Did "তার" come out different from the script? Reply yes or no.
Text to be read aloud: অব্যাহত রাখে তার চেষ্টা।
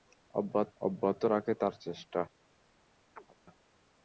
no